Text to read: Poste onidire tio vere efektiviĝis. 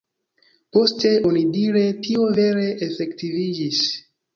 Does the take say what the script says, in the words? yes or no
yes